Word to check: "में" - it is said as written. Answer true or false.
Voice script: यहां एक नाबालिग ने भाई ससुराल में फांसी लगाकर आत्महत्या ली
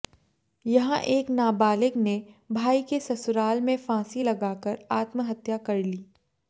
true